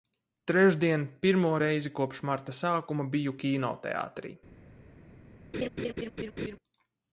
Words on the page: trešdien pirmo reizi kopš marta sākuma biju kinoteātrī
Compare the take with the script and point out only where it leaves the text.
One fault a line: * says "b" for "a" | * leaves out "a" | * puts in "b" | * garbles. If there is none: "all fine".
all fine